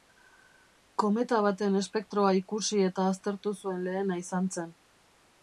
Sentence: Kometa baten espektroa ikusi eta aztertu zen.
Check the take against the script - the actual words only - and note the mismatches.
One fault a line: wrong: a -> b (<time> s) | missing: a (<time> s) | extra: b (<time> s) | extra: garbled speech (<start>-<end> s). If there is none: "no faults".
extra: zuen lehena izan (3.6 s)